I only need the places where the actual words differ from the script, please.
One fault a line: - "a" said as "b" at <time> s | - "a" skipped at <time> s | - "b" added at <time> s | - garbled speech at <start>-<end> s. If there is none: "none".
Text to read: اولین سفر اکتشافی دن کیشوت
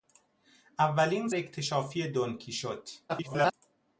- "سفر" skipped at 1.3 s
- garbled speech at 3.1-3.5 s